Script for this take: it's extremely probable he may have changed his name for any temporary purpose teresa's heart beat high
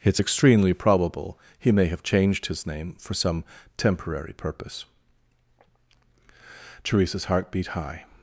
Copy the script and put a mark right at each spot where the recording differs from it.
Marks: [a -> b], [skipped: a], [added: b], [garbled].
it's extremely probable he may have changed his name for [any -> some] temporary purpose teresa's heart beat high